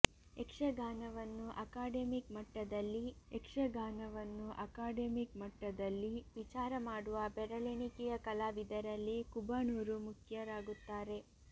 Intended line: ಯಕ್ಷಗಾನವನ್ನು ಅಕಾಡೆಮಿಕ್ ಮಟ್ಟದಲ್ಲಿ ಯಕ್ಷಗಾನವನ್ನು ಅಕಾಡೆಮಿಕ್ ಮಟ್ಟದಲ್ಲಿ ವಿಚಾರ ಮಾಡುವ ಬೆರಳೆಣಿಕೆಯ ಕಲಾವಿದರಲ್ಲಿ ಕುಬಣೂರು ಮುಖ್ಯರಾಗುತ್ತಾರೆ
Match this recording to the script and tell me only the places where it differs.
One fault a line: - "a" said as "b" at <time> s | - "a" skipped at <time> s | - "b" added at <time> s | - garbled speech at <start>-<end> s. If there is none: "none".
none